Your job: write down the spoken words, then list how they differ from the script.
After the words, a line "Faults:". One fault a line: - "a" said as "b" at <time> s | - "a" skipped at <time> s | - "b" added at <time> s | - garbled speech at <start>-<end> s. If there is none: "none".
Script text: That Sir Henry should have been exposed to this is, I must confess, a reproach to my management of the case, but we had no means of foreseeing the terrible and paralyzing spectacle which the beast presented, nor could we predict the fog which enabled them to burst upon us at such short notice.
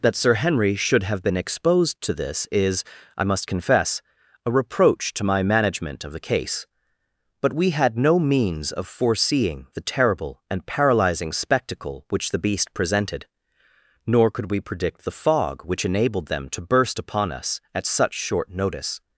That Sir Henry should have been exposed to this is, I must confess, a reproach to my management of the case, but we had no means of foreseeing the terrible and paralyzing spectacle which the beast presented, nor could we predict the fog which enabled them to burst upon us at such short notice.
Faults:
none